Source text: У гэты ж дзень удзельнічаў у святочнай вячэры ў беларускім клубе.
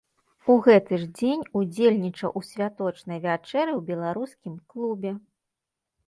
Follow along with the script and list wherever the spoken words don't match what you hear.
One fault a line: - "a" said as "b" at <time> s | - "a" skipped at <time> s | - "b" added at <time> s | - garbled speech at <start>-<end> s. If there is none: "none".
none